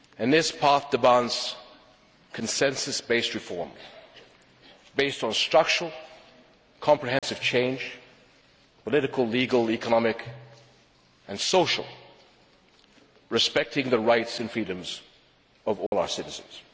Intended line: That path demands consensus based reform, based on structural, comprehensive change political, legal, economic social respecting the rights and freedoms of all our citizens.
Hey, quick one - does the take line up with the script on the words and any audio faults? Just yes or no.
no